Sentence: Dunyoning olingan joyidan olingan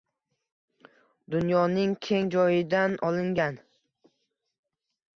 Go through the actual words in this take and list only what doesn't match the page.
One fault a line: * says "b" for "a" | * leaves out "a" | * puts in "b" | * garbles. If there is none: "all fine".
* says "keng" for "olingan"